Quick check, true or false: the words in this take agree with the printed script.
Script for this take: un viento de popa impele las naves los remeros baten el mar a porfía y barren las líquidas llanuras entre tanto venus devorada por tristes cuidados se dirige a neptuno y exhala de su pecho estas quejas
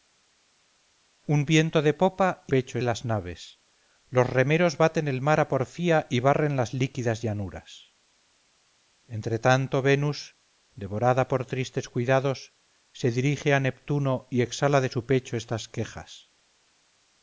false